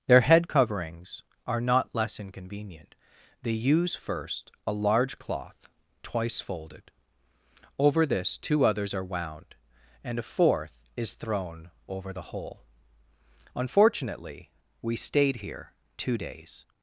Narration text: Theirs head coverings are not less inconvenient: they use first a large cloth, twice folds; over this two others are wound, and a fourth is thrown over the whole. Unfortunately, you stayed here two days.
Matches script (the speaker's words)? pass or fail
fail